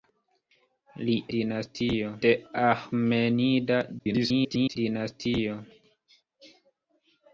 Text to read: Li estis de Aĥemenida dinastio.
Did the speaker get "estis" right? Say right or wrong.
wrong